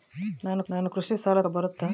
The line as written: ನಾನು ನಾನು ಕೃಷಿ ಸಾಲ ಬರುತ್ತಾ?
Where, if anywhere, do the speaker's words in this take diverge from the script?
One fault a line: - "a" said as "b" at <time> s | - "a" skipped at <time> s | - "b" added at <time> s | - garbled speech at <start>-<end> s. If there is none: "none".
none